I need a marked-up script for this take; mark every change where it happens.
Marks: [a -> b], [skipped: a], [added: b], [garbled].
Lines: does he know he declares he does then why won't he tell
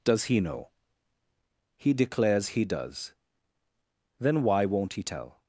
does he know he declares he does then why won't he tell